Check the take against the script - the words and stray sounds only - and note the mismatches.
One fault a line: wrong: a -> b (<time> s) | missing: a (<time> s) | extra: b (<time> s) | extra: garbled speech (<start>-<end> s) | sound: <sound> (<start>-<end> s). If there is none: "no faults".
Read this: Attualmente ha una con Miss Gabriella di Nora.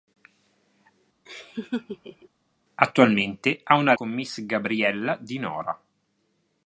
sound: laugh (1.3-2.3 s)